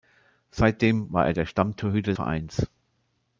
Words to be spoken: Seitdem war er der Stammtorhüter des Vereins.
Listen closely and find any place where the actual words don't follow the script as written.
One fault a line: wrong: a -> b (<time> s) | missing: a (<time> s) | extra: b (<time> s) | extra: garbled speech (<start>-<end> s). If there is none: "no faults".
missing: des (2.1 s)